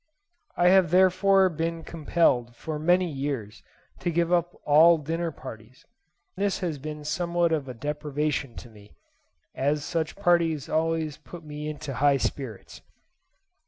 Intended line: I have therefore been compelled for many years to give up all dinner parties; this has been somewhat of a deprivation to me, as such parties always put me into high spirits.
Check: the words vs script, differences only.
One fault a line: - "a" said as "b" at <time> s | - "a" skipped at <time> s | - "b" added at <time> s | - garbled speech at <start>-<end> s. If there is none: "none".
none